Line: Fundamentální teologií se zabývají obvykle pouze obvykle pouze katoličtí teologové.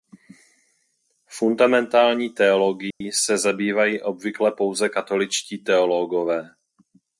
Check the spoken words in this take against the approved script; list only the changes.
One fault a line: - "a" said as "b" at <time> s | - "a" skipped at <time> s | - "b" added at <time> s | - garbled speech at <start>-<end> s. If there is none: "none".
- "obvykle pouze" skipped at 4.9 s